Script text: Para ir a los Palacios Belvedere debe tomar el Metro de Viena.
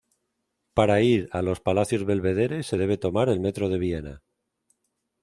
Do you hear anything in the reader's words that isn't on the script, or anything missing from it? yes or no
yes